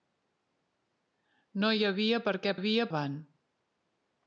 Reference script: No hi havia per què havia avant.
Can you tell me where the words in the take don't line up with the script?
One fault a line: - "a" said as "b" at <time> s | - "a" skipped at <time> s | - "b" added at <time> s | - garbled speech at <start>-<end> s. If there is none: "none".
none